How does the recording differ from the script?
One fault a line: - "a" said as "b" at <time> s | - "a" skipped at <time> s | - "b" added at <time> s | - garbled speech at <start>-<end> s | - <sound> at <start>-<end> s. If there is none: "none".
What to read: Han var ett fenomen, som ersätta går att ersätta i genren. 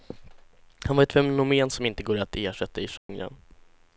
- "ersätta" said as "inte" at 1.9 s
- dropout at 3.0-3.1 s